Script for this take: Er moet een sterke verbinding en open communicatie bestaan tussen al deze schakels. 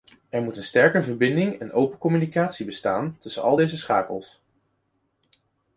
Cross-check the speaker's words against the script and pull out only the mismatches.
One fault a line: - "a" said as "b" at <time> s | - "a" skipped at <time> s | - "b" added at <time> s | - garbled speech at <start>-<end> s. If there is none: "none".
none